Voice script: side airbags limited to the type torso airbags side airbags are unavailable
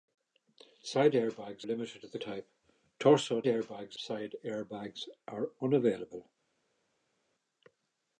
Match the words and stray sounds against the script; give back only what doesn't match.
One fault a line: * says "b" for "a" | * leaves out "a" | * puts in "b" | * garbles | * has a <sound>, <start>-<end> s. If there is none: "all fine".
all fine